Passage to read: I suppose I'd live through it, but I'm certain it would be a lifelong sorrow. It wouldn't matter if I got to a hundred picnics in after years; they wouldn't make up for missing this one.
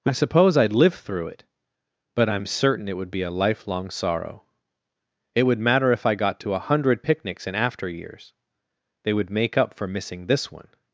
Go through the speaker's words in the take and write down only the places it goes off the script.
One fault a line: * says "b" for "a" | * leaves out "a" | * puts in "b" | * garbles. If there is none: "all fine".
* says "would" for "wouldn't"
* says "would" for "wouldn't"